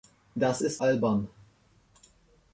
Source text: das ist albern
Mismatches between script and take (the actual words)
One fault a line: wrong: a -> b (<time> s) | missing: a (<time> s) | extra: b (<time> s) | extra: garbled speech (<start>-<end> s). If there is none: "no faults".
no faults